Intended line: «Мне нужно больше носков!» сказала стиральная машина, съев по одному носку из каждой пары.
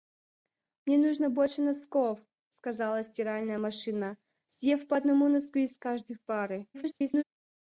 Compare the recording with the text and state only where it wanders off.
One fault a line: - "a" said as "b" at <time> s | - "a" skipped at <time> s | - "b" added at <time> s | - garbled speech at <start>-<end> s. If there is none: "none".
- garbled speech at 6.7-7.2 s